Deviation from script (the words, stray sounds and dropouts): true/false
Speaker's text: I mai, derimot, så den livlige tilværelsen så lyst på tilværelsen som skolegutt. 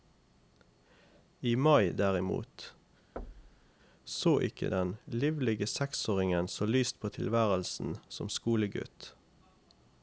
true